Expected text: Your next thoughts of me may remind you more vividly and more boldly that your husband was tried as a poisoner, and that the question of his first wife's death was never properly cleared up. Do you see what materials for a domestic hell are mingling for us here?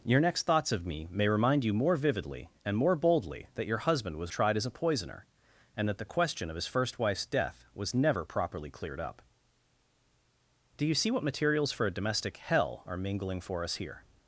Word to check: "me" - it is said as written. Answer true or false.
true